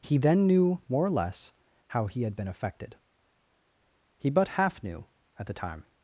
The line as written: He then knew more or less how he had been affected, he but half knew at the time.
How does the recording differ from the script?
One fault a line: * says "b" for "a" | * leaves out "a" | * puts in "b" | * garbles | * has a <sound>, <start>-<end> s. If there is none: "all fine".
all fine